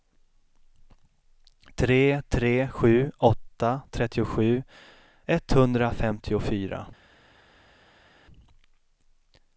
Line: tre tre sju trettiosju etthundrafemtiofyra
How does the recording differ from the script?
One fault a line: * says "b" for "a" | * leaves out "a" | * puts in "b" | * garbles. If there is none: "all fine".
* puts in "åtta"